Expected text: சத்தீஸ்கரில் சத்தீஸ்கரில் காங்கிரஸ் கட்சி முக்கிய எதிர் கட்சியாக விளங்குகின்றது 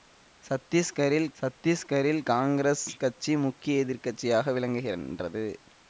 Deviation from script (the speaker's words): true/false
false